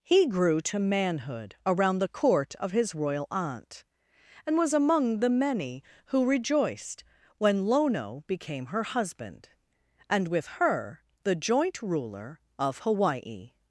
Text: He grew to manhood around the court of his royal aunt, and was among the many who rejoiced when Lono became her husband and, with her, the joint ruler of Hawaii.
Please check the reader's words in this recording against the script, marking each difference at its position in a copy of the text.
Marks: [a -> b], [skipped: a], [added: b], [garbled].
He grew to manhood around the court of his royal aunt, and was among the many who rejoiced when Lono became her husband and, with her, the joint ruler of Hawaii.